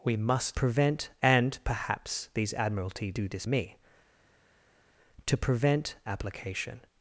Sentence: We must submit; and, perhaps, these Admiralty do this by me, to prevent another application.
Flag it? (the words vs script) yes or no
yes